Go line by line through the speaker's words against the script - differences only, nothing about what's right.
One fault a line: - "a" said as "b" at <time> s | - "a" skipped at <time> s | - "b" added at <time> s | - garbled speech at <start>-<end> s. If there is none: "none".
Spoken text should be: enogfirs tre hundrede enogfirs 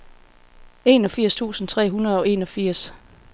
- "tusind" added at 1.3 s
- "og" added at 2.2 s